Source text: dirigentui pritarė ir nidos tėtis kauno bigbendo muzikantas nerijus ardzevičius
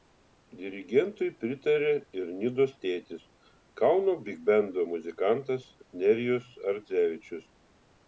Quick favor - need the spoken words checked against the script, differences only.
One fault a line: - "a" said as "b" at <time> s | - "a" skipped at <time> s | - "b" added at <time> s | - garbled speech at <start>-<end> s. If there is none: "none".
none